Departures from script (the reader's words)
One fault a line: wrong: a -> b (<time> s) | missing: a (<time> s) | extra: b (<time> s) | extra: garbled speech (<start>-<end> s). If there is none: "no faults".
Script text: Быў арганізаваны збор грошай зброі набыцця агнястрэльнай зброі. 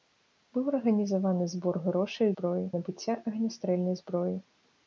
no faults